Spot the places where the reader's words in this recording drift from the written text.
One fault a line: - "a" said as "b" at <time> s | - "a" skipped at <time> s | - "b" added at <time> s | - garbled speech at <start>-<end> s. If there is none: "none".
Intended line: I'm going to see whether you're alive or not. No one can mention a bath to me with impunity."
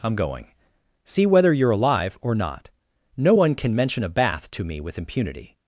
- "to" skipped at 0.5 s